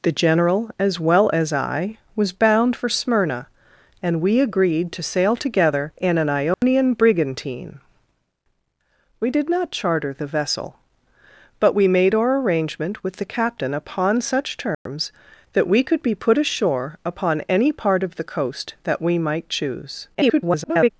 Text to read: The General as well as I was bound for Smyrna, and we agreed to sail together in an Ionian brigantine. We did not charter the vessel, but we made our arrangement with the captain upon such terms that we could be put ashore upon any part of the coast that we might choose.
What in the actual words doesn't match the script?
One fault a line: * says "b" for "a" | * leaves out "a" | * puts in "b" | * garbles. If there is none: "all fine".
* garbles